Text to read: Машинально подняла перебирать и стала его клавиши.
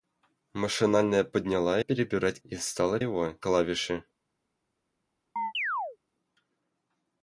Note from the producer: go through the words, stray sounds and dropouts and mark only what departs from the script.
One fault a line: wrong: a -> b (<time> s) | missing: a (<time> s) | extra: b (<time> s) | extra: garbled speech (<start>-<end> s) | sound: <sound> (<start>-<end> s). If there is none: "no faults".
sound: chirp (5.4-6.0 s)